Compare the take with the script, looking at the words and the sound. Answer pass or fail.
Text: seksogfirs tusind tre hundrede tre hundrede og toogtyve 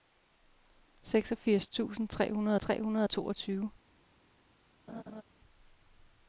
fail